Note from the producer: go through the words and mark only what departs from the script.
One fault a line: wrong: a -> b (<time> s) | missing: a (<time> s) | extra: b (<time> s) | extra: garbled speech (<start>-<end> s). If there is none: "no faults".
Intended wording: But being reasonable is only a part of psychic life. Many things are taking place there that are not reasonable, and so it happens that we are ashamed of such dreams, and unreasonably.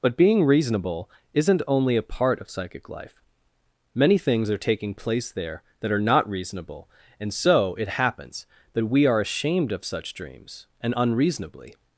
wrong: is -> isn't (1.3 s)